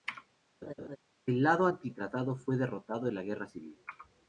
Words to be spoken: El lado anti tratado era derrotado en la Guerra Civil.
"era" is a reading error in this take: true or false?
true